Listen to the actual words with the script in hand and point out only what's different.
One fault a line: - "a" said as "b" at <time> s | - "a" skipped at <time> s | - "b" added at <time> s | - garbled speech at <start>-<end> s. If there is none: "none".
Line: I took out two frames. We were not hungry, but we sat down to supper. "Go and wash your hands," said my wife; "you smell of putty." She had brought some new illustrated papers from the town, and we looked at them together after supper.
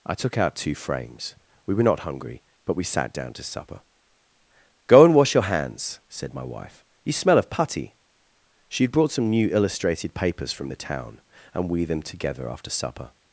- "looked at" skipped at 11.8 s